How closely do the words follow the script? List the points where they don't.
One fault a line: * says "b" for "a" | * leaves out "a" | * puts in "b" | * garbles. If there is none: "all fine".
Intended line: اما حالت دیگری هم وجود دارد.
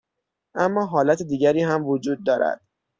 all fine